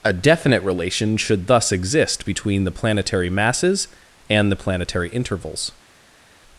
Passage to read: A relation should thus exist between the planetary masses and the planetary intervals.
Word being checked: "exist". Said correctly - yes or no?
yes